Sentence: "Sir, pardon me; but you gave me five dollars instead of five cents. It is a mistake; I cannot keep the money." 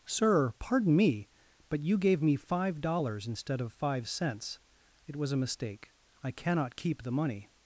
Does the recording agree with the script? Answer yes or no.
no